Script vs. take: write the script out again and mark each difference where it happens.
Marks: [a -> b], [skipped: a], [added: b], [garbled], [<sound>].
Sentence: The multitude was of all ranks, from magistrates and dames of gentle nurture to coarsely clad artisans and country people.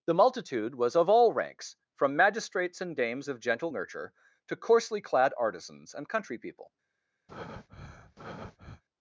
The multitude was of all ranks, from magistrates and dames of gentle nurture to coarsely clad artisans and country people. [breath]